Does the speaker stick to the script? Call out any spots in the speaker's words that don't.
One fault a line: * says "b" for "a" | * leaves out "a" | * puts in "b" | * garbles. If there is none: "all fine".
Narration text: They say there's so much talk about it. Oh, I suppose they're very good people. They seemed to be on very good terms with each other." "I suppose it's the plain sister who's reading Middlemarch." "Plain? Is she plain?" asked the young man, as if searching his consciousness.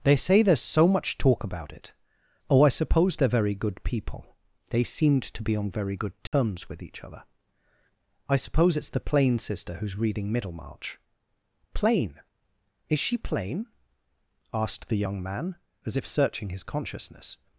all fine